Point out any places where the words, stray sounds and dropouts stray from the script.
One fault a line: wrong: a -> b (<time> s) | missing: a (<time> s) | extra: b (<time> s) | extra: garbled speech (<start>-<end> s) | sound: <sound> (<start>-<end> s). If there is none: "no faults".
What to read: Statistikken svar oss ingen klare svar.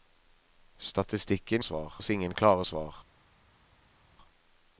no faults